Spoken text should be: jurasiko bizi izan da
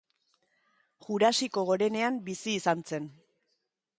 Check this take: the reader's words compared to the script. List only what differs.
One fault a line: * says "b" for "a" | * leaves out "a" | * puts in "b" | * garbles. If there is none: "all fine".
* puts in "gorenean"
* says "zen" for "da"